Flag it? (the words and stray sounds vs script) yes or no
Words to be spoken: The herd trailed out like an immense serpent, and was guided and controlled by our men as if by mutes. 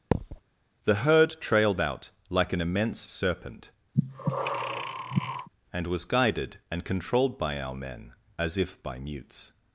yes